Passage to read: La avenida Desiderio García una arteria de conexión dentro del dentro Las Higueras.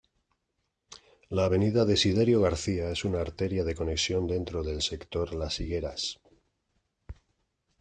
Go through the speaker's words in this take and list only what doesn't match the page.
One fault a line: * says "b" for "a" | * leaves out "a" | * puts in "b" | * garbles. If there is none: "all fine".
* puts in "es"
* says "sector" for "dentro"